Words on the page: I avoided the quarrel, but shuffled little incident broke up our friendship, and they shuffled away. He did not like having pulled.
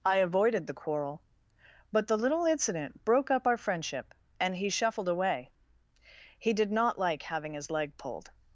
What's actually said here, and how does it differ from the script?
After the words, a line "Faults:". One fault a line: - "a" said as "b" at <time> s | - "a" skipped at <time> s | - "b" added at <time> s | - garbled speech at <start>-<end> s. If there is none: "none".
I avoided the quarrel, but the little incident broke up our friendship, and he shuffled away. He did not like having his leg pulled.
Faults:
- "shuffled" said as "the" at 2.1 s
- "they" said as "he" at 4.5 s
- "his leg" added at 7.5 s